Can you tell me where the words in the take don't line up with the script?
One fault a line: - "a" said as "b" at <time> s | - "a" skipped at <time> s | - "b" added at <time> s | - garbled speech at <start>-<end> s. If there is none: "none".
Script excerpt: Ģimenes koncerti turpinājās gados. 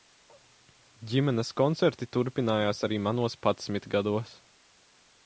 - "arī manos padsmit" added at 2.9 s